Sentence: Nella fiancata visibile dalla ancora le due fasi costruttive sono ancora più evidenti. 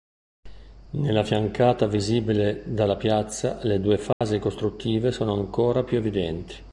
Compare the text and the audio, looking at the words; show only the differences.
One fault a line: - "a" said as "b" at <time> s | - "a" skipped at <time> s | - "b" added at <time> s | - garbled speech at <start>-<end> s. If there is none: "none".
- "ancora" said as "piazza" at 2.9 s